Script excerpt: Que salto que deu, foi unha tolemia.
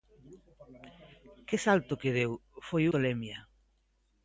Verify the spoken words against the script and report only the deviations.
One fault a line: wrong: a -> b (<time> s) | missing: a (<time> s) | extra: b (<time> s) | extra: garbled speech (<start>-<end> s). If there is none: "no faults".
missing: unha (2.8 s)